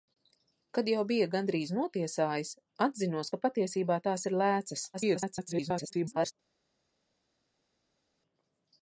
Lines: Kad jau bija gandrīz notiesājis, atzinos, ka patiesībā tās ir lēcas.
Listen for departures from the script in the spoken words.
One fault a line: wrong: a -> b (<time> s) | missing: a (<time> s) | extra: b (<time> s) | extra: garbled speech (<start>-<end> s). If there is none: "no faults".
extra: garbled speech (4.9-6.3 s)